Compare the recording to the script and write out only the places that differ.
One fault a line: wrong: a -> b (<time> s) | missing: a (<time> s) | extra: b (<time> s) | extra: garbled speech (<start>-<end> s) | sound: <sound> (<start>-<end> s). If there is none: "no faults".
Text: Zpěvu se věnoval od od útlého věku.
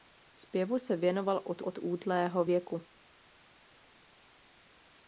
no faults